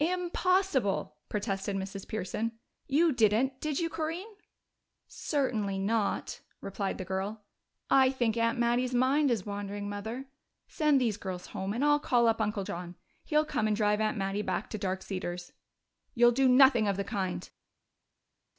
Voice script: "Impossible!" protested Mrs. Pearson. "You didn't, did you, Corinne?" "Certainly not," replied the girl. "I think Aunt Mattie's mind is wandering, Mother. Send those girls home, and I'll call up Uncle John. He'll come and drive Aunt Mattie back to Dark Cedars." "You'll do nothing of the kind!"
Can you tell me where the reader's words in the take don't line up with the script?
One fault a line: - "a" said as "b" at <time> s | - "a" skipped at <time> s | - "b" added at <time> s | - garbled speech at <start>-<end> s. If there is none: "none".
- "those" said as "these" at 11.0 s